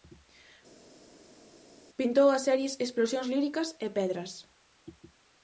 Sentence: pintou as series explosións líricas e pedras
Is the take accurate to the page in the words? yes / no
yes